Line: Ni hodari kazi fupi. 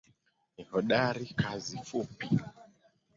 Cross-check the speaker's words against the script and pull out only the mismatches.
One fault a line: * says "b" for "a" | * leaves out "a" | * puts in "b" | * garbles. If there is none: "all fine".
all fine